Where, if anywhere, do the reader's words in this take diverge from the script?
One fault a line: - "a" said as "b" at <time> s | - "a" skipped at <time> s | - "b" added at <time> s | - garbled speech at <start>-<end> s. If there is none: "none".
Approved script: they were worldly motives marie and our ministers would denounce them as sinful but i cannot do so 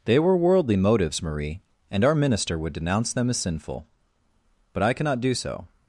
- "ministers" said as "minister" at 2.1 s